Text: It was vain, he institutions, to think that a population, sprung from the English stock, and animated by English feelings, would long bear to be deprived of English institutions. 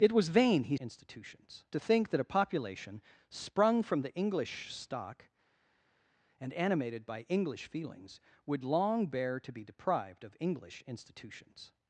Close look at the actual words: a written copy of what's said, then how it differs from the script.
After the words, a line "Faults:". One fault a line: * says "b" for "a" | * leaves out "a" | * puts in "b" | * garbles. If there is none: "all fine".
It was vain, he institutions, to think that a population, sprung from the English stock, and animated by English feelings, would long bear to be deprived of English institutions.
Faults:
all fine